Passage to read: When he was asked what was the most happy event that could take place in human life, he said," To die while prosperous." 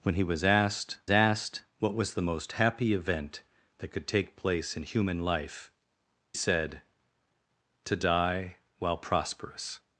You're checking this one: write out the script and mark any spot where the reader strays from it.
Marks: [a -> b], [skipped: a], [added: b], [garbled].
When he was asked [added: asked] what was the most happy event that could take place in human life, [skipped: he] said," To die while prosperous."